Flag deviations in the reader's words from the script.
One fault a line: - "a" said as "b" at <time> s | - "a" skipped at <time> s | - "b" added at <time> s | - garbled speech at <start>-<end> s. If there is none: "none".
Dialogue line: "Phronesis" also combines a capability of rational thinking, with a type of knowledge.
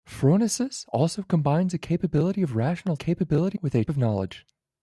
- "thinking" said as "capability" at 2.9 s
- "type" skipped at 3.8 s